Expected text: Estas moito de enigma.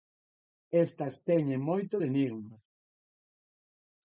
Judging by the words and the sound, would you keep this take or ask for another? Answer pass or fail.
fail